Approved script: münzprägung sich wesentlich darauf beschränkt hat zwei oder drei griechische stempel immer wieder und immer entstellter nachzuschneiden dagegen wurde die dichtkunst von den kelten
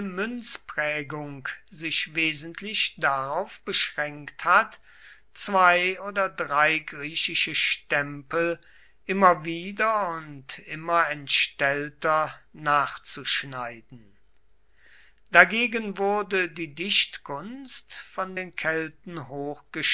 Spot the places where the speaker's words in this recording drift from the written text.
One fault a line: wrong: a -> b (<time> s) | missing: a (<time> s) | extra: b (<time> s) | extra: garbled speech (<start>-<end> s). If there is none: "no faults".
no faults